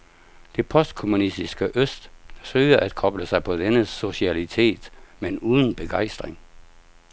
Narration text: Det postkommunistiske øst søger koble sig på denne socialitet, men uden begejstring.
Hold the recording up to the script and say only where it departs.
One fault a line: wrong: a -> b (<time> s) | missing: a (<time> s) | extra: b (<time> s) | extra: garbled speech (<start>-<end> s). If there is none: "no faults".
extra: at (2.8 s)